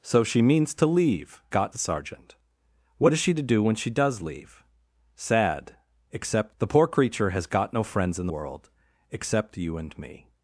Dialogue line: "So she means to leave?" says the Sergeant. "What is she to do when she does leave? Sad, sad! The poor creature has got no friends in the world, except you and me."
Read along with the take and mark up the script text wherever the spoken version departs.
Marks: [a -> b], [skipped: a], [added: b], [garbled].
"So she means to leave?" [says -> got] the Sergeant. "What is she to do when she does leave? Sad, [sad! -> except] The poor creature has got no friends in [skipped: the] world, except you and me."